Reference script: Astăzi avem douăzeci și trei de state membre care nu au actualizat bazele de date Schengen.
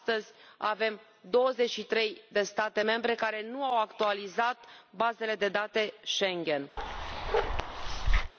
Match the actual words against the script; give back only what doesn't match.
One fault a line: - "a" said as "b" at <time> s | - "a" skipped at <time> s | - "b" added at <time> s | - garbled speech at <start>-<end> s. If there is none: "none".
none